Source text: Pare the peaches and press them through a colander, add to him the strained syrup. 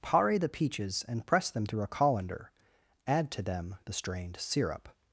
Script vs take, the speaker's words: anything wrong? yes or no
yes